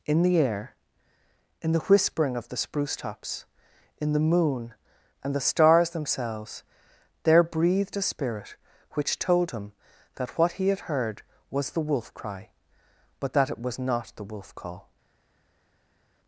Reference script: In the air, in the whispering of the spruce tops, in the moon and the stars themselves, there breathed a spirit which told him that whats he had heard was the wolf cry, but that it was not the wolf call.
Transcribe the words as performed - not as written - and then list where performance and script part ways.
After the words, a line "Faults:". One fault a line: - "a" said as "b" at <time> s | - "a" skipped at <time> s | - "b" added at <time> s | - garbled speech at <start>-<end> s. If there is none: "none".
In the air, in the whispering of the spruce tops, in the moon and the stars themselves, there breathed a spirit which told him that what he had heard was the wolf cry, but that it was not the wolf call.
Faults:
- "whats" said as "what" at 10.4 s